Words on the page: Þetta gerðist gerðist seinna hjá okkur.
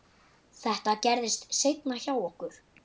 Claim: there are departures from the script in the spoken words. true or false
true